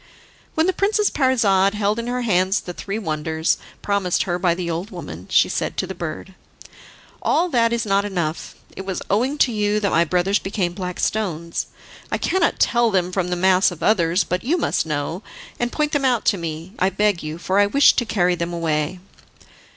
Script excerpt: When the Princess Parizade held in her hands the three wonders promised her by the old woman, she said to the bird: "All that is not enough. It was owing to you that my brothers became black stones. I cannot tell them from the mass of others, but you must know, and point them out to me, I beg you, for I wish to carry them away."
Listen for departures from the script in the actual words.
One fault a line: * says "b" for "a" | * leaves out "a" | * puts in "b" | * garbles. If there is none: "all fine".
all fine